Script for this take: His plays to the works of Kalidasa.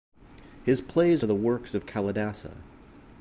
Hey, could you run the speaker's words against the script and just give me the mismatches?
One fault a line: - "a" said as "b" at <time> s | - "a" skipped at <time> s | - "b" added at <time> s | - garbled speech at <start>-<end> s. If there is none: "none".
none